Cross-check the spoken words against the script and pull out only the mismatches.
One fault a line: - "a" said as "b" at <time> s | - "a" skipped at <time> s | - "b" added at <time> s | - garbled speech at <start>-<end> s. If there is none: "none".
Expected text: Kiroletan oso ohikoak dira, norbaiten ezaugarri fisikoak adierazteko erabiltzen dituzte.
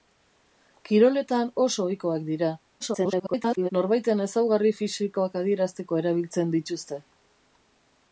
- garbled speech at 2.8-3.7 s